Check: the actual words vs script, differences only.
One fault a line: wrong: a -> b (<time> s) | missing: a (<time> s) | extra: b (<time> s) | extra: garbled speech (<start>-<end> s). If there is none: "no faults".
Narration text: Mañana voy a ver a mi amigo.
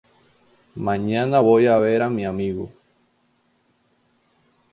no faults